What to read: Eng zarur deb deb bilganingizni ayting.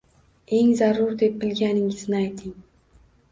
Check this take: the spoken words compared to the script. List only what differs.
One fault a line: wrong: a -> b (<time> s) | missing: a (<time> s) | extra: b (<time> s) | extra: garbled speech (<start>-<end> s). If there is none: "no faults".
missing: deb (1.3 s)